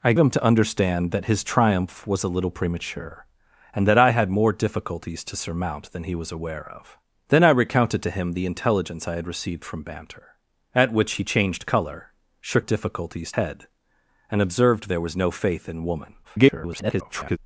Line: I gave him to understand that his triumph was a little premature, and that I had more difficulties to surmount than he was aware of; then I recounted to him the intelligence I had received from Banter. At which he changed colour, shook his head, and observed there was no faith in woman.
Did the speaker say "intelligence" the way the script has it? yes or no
yes